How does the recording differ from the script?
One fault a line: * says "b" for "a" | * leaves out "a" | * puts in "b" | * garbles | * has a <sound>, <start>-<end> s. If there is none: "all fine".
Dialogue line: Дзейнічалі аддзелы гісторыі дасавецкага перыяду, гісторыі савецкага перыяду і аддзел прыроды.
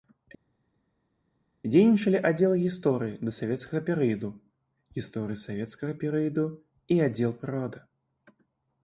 all fine